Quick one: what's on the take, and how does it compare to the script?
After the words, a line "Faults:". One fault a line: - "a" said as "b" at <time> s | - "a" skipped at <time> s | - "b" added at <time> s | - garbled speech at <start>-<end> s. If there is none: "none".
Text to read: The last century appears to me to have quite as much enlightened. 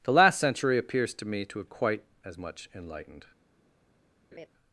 The last century appears to me to have quite as much enlightened.
Faults:
none